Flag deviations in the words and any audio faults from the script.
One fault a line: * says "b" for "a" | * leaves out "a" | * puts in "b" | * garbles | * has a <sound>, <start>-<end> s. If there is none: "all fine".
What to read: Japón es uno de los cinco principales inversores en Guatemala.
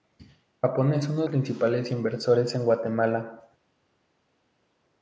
* leaves out "de los cinco"